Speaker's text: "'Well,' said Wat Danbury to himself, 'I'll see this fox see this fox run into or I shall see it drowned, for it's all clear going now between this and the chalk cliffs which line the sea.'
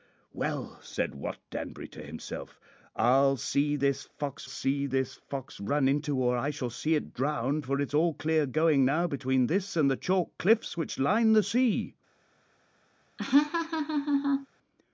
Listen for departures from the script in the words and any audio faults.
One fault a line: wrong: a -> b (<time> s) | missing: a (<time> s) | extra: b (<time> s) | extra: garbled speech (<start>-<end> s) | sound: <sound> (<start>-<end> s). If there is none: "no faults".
sound: laugh (13.2-14.5 s)